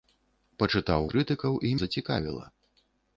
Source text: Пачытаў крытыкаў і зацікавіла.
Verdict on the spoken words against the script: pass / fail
pass